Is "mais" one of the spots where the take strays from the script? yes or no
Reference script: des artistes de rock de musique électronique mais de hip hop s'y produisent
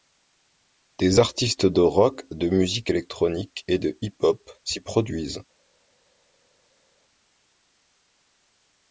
yes